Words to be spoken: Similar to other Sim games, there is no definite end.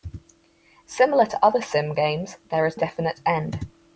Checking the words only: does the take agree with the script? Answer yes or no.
no